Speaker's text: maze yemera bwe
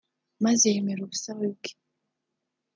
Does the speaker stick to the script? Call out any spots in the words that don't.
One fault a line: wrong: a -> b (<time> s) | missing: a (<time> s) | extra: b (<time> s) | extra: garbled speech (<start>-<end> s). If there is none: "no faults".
extra: ubusabe (1.0 s)